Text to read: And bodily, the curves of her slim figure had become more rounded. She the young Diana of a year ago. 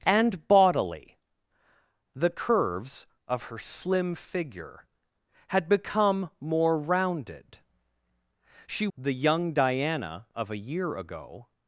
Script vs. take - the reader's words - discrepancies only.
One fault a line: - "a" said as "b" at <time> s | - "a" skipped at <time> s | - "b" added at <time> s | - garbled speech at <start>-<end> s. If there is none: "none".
none